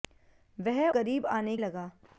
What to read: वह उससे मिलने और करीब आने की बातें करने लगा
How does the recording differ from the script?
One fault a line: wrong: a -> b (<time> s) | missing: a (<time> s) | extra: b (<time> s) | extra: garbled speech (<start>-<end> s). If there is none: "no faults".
missing: उससे मिलने और (0.9 s)
missing: की बातें करने (1.6 s)